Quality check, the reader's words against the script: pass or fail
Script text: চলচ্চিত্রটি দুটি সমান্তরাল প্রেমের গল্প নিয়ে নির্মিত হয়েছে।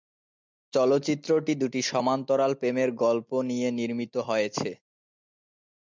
pass